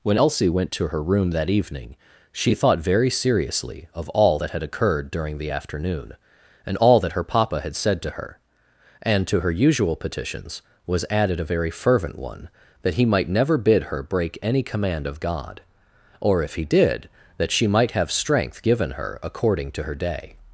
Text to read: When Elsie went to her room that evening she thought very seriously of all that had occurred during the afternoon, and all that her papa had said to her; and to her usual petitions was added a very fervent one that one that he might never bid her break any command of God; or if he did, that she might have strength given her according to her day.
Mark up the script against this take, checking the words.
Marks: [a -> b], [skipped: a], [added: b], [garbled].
When Elsie went to her room that evening she thought very seriously of all that had occurred during the afternoon, and all that her papa had said to her; and to her usual petitions was added a very fervent one that [skipped: one that] he might never bid her break any command of God; or if he did, that she might have strength given her according to her day.